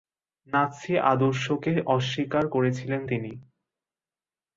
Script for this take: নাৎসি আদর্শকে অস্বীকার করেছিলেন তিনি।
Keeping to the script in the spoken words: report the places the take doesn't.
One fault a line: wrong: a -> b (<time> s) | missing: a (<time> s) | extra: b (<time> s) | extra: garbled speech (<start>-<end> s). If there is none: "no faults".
no faults